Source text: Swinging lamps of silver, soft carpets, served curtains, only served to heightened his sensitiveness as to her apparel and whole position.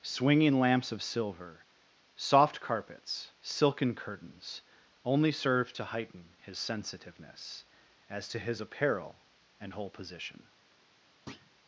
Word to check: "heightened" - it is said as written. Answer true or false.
false